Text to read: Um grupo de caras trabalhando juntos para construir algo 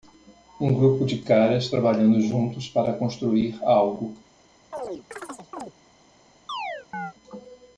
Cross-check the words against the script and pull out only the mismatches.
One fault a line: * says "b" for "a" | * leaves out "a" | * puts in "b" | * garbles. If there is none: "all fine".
all fine